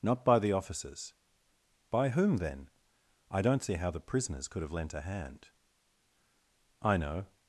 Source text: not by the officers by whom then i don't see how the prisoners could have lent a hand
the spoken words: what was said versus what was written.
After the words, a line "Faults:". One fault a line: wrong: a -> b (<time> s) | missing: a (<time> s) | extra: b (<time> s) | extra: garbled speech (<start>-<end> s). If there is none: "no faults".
not by the officers by whom then i don't see how the prisoners could have lent a hand i know
Faults:
extra: i know (6.8 s)